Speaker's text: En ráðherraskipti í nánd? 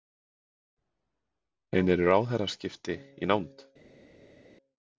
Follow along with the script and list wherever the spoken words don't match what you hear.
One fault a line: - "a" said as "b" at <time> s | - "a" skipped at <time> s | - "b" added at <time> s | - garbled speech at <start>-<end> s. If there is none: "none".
- "eru" added at 2.0 s